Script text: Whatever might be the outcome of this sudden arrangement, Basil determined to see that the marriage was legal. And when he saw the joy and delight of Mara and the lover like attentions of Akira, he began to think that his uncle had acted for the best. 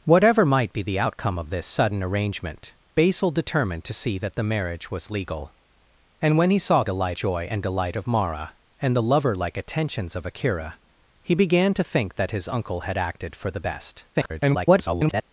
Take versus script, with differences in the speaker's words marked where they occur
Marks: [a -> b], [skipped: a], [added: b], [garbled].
Whatever might be the outcome of this sudden arrangement, Basil determined to see that the marriage was legal. And when he saw [the -> delight] joy and delight of Mara and the lover like attentions of Akira, he began to think that his uncle had acted for the best. [garbled]